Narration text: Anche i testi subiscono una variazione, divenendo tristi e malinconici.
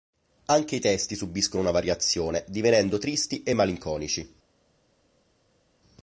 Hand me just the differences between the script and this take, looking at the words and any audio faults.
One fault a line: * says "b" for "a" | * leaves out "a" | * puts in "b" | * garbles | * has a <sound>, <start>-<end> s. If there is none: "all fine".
all fine